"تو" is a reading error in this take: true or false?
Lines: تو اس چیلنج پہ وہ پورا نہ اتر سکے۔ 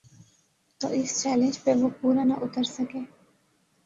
false